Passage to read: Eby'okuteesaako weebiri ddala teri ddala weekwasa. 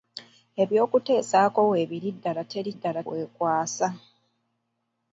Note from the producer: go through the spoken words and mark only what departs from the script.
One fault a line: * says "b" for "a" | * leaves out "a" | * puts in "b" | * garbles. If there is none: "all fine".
all fine